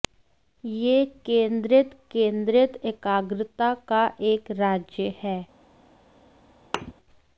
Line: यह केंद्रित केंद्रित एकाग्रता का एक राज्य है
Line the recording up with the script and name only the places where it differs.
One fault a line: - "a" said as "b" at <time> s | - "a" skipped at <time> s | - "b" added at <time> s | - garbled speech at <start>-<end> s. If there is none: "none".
none